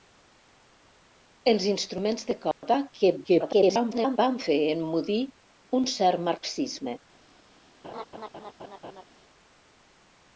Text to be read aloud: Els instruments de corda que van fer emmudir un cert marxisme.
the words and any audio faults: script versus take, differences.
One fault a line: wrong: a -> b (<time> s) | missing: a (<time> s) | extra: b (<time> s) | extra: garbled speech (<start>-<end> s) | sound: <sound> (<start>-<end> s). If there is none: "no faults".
sound: dropout (2.5-2.6 s)
extra: garbled speech (3.2-4.2 s)
sound: laugh (7.8-9.0 s)